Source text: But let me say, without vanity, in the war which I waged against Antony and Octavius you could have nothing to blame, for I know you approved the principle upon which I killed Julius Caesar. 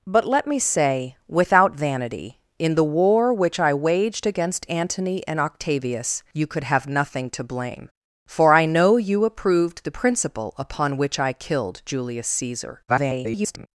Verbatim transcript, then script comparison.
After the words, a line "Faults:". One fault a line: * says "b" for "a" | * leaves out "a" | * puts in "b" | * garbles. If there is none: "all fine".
But let me say, without vanity, in the war which I waged against Antony and Octavius you could have nothing to blame, for I know you approved the principle upon which I killed Julius Caesar. [garbled]
Faults:
* garbles